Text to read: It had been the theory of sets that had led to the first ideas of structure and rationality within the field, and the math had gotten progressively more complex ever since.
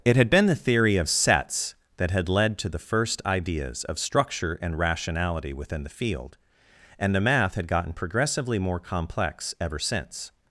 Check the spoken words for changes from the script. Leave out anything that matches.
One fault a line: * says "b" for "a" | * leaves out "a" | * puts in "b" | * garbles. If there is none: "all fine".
all fine